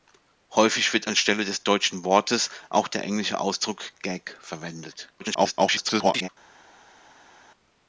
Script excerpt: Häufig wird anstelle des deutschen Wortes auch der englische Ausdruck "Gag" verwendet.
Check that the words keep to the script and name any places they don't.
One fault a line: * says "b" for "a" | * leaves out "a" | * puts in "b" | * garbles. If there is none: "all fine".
* garbles